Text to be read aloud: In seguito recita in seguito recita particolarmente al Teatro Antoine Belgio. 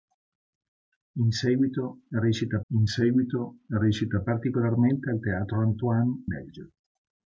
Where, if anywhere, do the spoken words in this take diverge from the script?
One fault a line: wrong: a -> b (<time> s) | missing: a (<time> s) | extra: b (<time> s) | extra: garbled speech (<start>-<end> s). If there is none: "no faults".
no faults